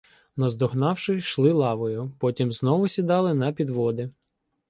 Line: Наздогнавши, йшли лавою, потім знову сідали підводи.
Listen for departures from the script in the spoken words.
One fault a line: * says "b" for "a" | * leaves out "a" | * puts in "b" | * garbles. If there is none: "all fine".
* puts in "на"